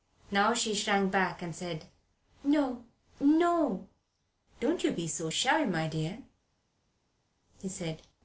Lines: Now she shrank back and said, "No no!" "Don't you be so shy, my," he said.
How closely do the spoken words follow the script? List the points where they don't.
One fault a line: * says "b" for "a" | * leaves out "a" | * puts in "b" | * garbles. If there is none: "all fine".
* puts in "dear"